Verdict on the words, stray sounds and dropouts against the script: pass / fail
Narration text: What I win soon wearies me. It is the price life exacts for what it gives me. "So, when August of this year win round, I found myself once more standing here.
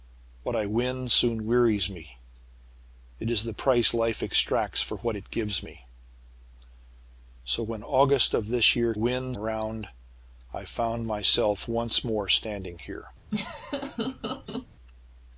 fail